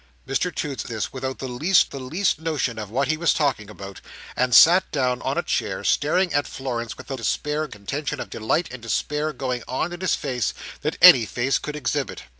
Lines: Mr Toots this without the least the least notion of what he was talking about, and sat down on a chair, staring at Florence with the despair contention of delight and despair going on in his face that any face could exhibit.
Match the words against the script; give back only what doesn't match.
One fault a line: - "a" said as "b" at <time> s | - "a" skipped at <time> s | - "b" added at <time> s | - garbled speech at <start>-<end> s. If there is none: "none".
none